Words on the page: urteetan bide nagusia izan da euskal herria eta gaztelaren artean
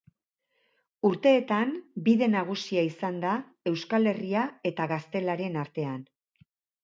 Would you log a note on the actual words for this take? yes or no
no